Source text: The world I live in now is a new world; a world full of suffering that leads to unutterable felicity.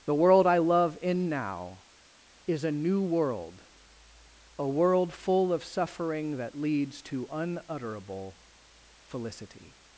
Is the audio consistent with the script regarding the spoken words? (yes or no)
no